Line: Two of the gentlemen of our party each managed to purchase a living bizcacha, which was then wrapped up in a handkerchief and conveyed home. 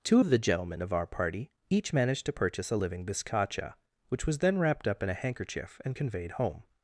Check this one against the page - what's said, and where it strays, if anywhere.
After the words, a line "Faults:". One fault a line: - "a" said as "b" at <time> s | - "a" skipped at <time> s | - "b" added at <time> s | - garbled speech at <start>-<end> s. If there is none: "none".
Two of the gentlemen of our party each managed to purchase a living bizcacha, which was then wrapped up in a handkerchief and conveyed home.
Faults:
none